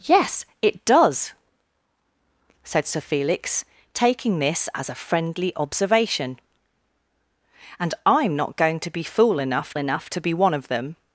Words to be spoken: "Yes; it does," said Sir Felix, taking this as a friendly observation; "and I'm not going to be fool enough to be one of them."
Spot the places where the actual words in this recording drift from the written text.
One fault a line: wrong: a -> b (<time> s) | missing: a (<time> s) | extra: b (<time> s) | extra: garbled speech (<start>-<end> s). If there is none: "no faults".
extra: enough (9.8 s)